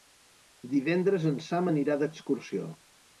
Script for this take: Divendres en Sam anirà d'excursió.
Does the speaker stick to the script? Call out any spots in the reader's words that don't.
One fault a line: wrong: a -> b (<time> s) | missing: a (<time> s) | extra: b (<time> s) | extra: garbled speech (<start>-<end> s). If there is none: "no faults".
no faults